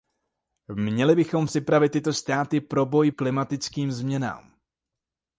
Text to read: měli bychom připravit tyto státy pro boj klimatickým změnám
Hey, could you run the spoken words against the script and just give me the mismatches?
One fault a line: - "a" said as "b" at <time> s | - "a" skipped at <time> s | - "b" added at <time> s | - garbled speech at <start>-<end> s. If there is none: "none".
none